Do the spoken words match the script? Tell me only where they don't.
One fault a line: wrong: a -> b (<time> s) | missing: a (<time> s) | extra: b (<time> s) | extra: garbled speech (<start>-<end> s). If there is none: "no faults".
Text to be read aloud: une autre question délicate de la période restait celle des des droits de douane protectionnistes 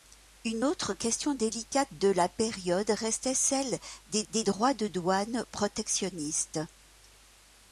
no faults